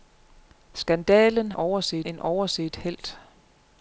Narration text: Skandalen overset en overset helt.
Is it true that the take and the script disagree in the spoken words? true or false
false